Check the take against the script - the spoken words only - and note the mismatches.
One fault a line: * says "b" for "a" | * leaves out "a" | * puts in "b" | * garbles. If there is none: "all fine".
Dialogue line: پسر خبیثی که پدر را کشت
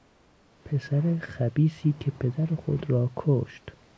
* puts in "خود"